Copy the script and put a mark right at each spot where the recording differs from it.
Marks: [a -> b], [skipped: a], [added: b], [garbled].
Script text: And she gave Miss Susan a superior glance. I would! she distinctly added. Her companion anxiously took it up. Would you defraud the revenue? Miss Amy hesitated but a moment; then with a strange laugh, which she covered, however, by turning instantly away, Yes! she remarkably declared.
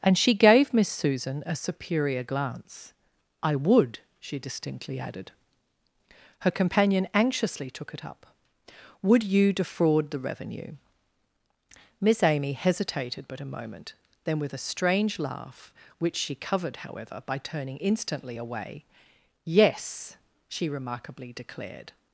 And she gave Miss Susan a superior glance. I would! she distinctly added. Her companion anxiously took it up. Would you defraud the revenue? Miss Amy hesitated but a moment; then with a strange laugh, which she covered, however, by turning instantly away, Yes! she remarkably declared.